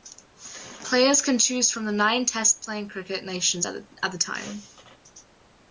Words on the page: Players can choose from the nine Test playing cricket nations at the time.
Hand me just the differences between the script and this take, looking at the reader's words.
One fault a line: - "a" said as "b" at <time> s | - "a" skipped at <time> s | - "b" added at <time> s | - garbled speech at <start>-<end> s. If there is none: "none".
none